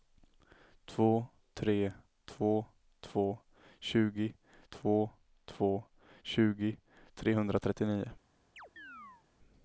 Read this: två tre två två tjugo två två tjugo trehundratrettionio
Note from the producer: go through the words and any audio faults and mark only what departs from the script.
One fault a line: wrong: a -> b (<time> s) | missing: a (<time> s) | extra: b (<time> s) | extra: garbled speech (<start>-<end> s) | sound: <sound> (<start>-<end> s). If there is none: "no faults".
sound: chirp (8.6-9.2 s)